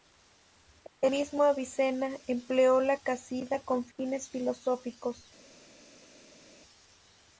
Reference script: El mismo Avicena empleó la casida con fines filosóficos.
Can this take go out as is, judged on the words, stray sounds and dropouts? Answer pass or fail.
pass